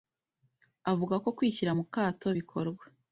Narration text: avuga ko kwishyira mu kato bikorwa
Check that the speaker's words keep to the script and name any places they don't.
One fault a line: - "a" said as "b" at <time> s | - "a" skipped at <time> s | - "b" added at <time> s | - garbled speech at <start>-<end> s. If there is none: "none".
none